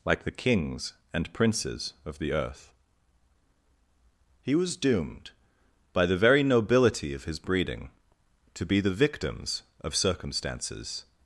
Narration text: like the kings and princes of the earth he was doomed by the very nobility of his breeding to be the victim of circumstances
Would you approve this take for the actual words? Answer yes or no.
no